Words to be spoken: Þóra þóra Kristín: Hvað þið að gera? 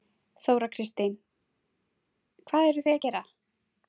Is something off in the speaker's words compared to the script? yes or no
yes